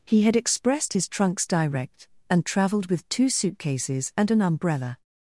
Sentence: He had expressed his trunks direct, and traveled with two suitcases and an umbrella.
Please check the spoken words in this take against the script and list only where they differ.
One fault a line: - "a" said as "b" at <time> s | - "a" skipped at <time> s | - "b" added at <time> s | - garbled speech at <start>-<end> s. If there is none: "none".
none